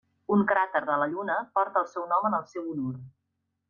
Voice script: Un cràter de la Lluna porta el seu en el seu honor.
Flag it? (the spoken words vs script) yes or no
yes